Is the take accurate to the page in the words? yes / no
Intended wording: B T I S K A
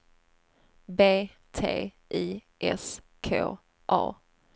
yes